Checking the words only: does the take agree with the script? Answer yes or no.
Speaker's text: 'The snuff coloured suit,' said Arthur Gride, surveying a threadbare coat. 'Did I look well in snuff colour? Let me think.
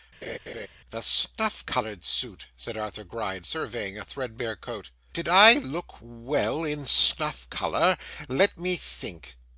yes